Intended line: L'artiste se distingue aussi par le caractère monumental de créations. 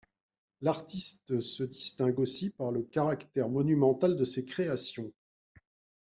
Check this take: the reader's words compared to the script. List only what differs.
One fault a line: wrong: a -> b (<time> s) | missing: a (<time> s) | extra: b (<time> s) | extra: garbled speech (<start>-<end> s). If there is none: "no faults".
extra: ses (4.2 s)